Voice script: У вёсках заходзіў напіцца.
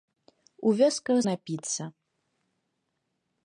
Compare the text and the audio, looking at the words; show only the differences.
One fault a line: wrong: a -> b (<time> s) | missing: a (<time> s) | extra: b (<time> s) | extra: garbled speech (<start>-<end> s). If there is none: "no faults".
missing: заходзіў (1.2 s)